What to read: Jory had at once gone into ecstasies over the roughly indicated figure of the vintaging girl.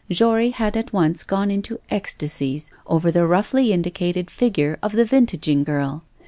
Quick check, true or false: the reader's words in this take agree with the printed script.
true